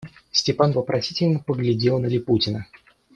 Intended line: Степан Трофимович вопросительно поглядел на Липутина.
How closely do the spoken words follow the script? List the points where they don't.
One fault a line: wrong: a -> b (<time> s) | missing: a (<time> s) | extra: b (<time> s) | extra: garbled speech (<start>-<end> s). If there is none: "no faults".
missing: Трофимович (0.7 s)